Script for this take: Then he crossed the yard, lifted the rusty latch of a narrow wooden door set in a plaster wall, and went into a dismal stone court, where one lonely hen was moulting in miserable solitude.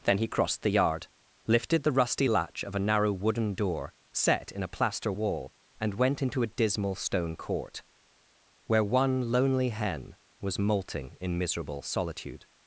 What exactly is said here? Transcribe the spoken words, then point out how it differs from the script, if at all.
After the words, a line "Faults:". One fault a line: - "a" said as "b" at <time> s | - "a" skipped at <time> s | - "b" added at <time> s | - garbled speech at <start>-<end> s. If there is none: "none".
Then he crossed the yard, lifted the rusty latch of a narrow wooden door set in a plaster wall, and went into a dismal stone court, where one lonely hen was moulting in miserable solitude.
Faults:
none